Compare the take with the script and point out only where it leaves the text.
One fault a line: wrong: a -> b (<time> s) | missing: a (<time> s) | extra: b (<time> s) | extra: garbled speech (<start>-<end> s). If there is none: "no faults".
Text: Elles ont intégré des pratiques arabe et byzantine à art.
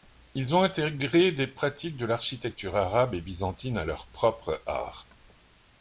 wrong: Elles -> Ils (0.3 s)
extra: de l'architecture (1.9 s)
extra: leur propre (3.9 s)